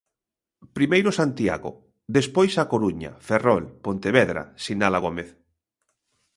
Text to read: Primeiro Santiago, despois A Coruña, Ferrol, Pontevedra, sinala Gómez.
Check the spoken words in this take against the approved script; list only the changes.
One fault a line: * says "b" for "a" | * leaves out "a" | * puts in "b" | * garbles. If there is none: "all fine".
all fine